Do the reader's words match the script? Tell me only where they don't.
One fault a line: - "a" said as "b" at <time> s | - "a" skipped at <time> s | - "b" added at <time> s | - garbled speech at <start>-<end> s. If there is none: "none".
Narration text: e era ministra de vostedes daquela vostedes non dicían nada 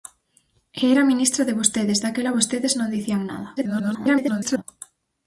- garbled speech at 3.6-4.6 s